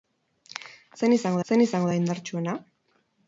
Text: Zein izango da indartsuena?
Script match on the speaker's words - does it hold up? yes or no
no